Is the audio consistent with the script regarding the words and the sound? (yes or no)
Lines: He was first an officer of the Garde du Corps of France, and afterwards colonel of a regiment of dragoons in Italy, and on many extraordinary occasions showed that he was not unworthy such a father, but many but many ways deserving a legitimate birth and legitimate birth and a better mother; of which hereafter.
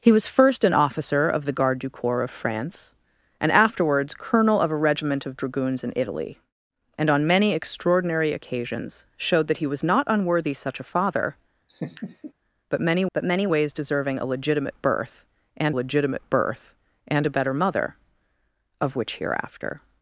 no